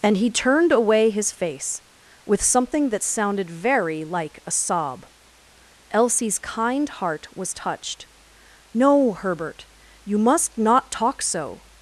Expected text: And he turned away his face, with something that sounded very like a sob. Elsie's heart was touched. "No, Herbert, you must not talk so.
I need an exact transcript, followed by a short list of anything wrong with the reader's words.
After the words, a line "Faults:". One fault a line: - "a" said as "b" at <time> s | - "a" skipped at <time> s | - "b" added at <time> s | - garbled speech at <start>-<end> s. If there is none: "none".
And he turned away his face, with something that sounded very like a sob. Elsie's kind heart was touched. "No, Herbert, you must not talk so.
Faults:
- "kind" added at 6.4 s